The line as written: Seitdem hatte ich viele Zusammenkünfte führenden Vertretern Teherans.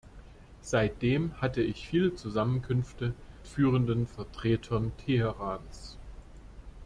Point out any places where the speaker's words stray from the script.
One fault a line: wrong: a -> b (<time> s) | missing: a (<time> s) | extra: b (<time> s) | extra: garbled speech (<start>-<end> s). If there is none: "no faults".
no faults